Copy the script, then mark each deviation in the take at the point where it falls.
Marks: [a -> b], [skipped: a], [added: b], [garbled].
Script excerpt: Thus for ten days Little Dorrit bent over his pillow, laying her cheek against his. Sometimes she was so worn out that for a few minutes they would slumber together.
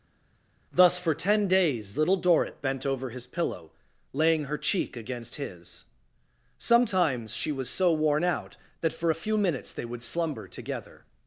Thus for ten days Little Dorrit bent over his pillow, laying her cheek against his. Sometimes she was so worn out that for a few minutes they would slumber together.